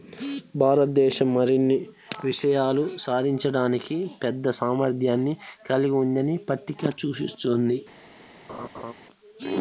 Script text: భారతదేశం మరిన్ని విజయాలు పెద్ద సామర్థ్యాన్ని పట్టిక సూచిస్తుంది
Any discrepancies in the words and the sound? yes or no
yes